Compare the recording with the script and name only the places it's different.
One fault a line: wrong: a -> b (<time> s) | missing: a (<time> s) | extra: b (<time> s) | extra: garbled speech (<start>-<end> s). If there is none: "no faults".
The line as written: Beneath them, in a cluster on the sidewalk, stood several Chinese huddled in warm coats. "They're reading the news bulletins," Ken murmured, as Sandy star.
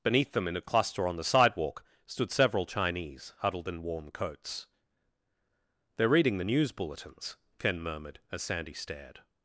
wrong: star -> stared (8.7 s)